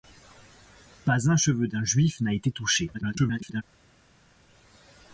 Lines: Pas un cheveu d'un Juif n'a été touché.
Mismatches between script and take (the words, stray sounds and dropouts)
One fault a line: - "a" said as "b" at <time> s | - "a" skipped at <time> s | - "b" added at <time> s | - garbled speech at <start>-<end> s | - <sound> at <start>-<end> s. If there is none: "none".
- garbled speech at 2.9-3.6 s